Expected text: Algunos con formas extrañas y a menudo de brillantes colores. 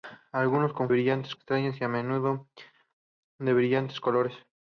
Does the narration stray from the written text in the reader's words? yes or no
yes